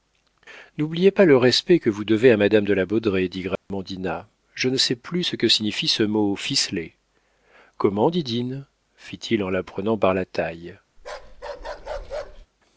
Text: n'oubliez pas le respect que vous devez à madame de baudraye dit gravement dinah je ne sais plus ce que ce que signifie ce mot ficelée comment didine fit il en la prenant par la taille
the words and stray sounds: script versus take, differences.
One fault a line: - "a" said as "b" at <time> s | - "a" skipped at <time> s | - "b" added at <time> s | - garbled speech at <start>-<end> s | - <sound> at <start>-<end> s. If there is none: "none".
- "la" added at 2.7 s
- dropout at 3.6-3.7 s
- "ce que" skipped at 5.5 s
- bark at 11.0-12.5 s